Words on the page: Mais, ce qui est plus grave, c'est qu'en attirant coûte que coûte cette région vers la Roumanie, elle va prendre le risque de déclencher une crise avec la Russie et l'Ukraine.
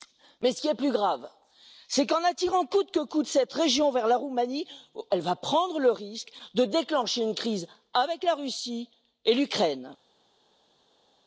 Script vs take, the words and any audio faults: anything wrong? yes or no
no